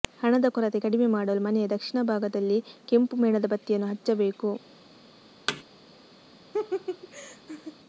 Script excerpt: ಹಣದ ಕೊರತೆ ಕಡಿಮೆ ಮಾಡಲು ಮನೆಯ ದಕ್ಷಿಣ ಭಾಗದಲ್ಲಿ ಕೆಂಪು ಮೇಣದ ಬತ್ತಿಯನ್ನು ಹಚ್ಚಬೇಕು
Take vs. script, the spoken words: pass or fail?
pass